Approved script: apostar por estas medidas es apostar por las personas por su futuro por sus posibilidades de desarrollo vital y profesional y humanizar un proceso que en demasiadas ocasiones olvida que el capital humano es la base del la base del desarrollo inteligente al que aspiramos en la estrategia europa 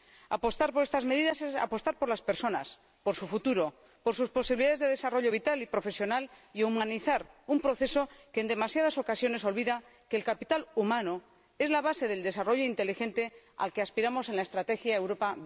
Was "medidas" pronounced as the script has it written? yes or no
yes